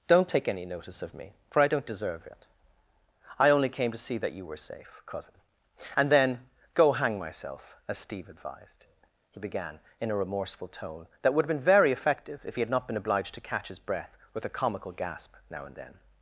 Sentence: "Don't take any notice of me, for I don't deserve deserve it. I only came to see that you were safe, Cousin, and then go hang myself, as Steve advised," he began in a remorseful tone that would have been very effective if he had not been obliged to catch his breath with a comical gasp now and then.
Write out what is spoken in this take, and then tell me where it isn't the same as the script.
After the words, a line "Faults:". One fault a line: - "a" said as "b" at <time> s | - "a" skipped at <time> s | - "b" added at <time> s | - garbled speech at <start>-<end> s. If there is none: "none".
"Don't take any notice of me, for I don't deserve it. I only came to see that you were safe, Cousin, and then go hang myself, as Steve advised," he began in a remorseful tone that would have been very effective if he had not been obliged to catch his breath with a comical gasp now and then.
Faults:
- "deserve" skipped at 2.3 s